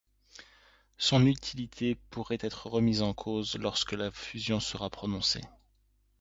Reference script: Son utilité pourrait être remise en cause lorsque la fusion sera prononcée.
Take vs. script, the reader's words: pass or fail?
pass